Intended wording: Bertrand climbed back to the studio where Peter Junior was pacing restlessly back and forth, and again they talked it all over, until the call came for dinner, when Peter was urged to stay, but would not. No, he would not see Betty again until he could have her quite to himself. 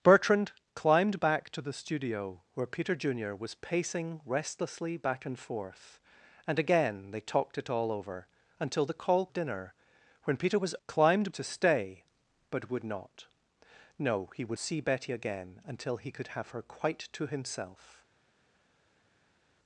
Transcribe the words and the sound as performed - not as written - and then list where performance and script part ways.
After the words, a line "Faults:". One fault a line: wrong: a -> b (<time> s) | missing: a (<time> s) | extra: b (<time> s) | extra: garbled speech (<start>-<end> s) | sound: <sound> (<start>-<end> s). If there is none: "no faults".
Bertrand climbed back to the studio where Peter Junior was pacing restlessly back and forth, and again they talked it all over, until the call dinner, when Peter was climbed to stay, but would not. No, he would see Betty again until he could have her quite to himself.
Faults:
missing: came for (9.3 s)
wrong: urged -> climbed (10.9 s)
missing: not (14.6 s)